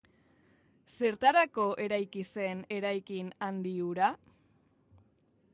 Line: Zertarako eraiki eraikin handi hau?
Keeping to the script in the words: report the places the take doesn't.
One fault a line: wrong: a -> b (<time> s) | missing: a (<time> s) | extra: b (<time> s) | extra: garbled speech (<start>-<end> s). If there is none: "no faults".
extra: zen (2.4 s)
wrong: hau -> hura (3.9 s)